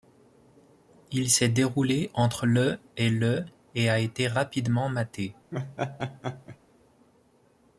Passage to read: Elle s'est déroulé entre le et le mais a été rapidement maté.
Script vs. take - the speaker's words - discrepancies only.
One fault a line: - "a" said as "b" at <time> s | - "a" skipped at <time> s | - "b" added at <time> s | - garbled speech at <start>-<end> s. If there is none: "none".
- "Elle" said as "Il" at 1.1 s
- "mais" said as "et" at 3.8 s